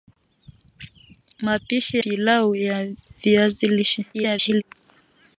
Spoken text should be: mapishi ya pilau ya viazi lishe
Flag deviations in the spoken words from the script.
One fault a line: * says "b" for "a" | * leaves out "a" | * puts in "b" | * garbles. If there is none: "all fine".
* leaves out "ya"
* garbles